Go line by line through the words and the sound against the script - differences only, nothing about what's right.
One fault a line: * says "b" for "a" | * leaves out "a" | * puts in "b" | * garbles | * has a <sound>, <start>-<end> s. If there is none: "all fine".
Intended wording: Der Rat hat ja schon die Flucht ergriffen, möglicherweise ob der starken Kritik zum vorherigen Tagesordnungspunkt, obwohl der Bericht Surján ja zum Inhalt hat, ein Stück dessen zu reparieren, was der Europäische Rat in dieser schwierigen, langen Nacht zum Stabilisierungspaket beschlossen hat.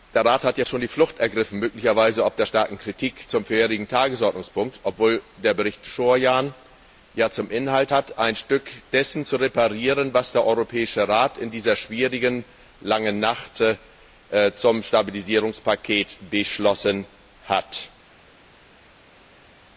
all fine